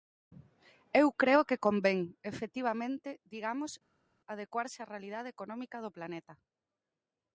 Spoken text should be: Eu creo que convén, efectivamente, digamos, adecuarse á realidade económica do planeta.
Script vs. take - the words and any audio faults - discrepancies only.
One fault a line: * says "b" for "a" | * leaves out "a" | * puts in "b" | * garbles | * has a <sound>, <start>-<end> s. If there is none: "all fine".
all fine